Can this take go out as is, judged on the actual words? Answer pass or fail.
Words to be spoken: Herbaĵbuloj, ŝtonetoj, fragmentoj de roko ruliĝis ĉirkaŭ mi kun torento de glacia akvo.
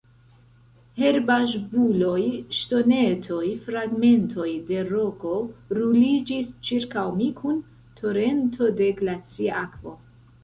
pass